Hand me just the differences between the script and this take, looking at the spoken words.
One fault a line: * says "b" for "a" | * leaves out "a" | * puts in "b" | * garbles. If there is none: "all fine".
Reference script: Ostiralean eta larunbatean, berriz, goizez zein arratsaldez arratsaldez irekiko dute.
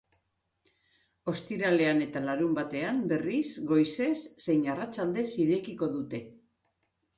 * leaves out "arratsaldez"